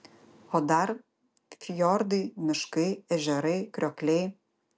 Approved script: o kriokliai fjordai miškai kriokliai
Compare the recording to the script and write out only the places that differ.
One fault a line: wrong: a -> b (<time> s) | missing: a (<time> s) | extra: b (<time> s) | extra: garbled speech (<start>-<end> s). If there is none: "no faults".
wrong: kriokliai -> dar (0.7 s)
extra: ežerai (3.2 s)